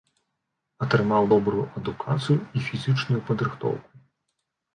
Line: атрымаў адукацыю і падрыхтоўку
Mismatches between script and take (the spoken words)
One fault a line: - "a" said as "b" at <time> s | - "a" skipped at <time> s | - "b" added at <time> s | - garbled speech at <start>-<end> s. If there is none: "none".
- "добрую" added at 1.3 s
- "фізічную" added at 2.7 s